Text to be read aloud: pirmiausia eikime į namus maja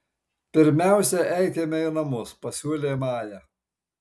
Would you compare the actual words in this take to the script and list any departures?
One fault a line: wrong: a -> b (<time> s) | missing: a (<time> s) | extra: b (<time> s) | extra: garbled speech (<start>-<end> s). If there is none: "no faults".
extra: pasiūlė (2.5 s)